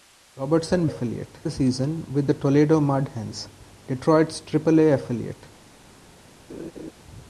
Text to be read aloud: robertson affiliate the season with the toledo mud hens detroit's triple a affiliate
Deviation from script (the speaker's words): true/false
false